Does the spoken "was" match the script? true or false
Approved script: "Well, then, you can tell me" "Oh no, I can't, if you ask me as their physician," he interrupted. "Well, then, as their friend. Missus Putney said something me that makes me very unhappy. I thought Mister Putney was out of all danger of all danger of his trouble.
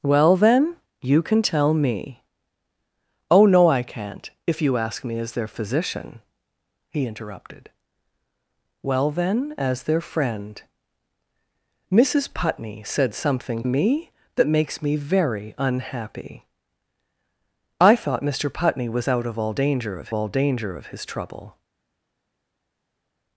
true